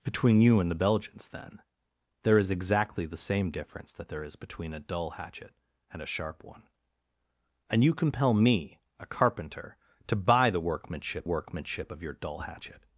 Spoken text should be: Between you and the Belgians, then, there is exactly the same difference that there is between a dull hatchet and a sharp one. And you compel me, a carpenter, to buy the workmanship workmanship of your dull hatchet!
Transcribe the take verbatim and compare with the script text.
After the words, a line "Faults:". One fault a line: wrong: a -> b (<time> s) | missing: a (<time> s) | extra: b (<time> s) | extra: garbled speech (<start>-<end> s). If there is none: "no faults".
Between you and the Belgians, then, there is exactly the same difference that there is between a dull hatchet and a sharp one. And you compel me, a carpenter, to buy the workmanship workmanship of your dull hatchet!
Faults:
no faults